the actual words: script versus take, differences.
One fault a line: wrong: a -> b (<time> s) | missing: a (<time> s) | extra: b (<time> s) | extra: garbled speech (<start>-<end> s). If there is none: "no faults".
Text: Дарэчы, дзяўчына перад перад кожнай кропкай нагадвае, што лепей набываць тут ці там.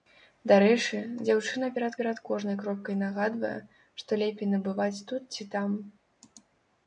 no faults